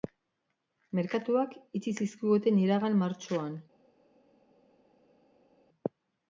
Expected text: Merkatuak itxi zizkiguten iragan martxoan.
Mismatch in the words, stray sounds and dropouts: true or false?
false